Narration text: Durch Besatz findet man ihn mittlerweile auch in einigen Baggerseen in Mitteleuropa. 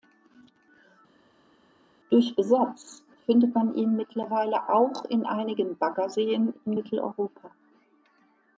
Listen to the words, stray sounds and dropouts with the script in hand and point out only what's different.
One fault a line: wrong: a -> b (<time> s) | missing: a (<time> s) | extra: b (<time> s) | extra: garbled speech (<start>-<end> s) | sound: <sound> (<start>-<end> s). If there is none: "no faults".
no faults